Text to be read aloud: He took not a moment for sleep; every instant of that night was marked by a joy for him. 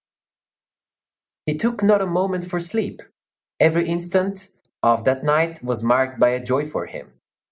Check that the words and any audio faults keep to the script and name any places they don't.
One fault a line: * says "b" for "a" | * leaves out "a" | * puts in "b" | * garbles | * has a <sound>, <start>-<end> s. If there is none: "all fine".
all fine